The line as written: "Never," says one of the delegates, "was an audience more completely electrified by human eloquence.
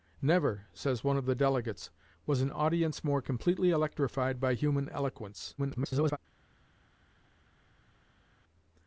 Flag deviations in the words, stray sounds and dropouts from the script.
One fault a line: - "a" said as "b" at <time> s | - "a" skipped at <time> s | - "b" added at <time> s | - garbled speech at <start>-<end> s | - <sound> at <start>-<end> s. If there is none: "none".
- garbled speech at 5.6-6.2 s